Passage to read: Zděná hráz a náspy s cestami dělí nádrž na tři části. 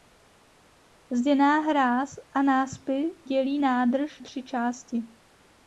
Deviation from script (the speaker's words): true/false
true